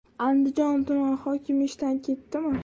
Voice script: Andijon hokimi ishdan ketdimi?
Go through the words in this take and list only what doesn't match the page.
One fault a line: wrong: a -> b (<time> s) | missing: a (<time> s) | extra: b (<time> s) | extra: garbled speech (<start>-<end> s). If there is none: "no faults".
extra: tumani (0.9 s)